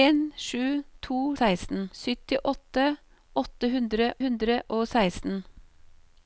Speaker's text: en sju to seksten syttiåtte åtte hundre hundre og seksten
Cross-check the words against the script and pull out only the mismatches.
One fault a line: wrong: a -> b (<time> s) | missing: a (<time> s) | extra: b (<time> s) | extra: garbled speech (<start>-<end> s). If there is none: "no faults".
no faults